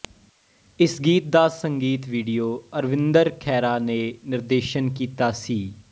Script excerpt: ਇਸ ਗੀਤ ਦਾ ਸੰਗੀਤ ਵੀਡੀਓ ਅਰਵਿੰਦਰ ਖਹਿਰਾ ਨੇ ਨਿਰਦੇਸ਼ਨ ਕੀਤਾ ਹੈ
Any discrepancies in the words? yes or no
yes